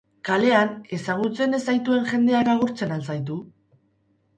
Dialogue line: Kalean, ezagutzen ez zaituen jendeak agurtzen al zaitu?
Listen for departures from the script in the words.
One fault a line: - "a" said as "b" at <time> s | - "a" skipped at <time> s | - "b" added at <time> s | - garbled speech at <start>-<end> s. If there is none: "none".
none